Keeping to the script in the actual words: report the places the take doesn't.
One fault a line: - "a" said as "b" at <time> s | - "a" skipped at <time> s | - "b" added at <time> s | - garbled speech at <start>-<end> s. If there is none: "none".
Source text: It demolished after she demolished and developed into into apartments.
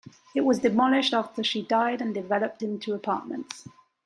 - "was" added at 0.4 s
- "demolished" said as "died" at 1.6 s
- "into" skipped at 2.9 s